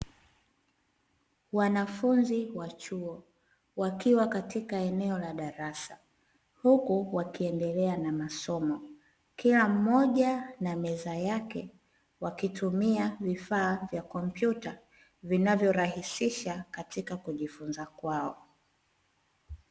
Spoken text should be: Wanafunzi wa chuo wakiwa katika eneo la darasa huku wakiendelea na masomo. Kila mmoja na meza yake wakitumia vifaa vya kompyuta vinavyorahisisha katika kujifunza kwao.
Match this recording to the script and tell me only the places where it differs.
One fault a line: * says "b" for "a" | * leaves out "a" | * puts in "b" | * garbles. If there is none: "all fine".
all fine